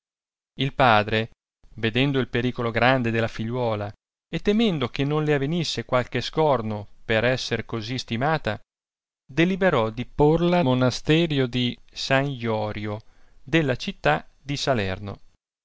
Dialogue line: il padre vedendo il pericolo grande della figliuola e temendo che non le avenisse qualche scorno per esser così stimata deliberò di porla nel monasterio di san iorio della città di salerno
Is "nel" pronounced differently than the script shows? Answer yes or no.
yes